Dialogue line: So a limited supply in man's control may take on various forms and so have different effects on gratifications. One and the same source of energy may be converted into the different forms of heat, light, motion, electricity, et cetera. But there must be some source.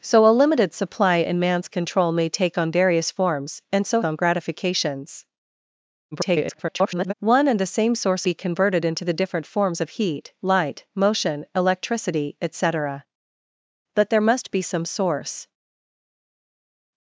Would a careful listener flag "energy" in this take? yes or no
yes